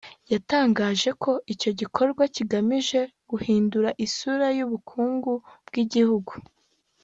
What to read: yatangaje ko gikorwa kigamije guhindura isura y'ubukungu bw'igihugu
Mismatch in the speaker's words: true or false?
true